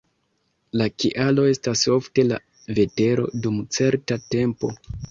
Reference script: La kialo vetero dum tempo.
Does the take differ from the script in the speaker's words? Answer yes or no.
yes